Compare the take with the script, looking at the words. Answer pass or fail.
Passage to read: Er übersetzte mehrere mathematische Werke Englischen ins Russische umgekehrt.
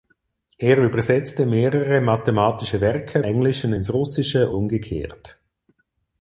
pass